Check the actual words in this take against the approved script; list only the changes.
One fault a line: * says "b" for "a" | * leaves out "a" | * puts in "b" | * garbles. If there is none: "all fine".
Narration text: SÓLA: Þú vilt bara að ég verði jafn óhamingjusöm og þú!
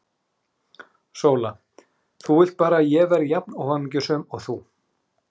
all fine